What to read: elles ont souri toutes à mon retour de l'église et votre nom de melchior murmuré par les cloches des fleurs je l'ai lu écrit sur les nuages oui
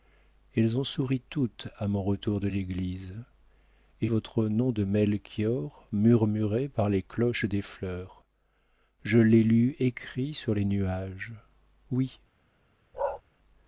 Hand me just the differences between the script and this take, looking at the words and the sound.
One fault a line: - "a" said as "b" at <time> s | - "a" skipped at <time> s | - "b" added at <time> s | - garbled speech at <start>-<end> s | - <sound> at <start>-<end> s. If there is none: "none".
- bark at 12.9-13.2 s